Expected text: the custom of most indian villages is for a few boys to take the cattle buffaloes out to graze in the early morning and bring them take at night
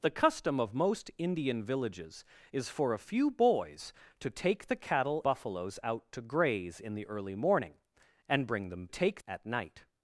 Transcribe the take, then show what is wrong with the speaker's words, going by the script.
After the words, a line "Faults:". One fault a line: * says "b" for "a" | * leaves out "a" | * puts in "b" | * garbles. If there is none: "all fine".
the custom of most indian villages is for a few boys to take the cattle buffaloes out to graze in the early morning and bring them take at night
Faults:
all fine